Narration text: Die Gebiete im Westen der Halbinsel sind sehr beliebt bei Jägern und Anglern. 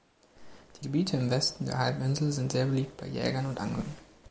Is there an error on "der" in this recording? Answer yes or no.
no